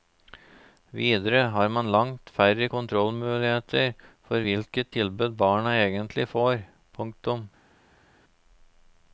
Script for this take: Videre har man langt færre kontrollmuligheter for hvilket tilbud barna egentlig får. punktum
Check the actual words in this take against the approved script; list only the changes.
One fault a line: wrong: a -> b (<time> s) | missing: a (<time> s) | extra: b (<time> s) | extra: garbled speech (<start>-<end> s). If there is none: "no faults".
no faults